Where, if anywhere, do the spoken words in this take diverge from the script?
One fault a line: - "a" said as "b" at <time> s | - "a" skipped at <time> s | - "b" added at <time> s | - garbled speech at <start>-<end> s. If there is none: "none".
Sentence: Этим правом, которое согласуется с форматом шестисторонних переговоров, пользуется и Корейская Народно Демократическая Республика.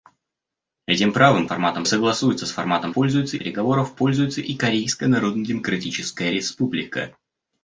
- "которое" said as "форматом" at 1.4 s
- "шестисторонних" said as "пользуется" at 2.9 s